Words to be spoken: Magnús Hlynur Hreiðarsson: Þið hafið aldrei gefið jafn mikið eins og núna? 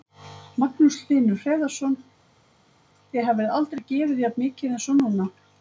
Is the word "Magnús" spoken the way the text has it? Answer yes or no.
yes